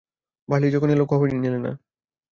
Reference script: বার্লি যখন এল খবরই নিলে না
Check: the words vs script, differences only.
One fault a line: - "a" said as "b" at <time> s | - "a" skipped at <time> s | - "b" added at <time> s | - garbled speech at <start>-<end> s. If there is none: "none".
none